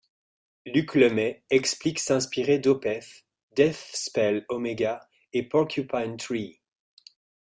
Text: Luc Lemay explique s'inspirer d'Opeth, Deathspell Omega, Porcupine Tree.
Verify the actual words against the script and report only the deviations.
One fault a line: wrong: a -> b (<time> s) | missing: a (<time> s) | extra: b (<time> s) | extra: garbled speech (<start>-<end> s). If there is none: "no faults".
extra: et (5.3 s)